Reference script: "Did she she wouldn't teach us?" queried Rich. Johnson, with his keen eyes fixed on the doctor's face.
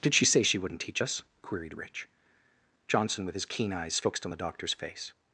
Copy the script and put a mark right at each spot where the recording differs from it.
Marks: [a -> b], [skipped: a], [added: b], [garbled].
"Did she [added: say] she wouldn't teach us?" queried Rich. Johnson, with his keen eyes fixed on the doctor's face.